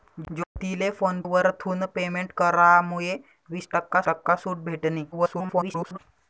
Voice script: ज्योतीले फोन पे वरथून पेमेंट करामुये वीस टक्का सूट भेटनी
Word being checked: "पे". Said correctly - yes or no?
no